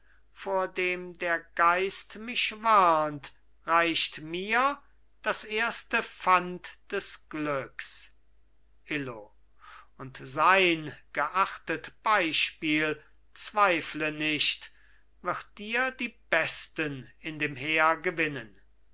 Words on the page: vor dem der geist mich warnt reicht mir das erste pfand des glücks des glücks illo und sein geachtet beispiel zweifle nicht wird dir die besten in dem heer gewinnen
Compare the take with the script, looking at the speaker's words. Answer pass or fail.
fail